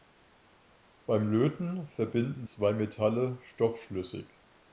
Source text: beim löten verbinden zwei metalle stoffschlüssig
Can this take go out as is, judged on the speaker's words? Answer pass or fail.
pass